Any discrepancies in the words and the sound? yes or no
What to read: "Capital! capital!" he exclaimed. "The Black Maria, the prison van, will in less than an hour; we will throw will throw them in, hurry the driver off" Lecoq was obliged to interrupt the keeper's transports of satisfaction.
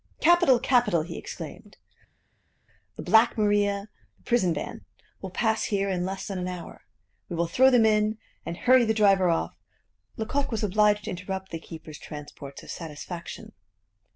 yes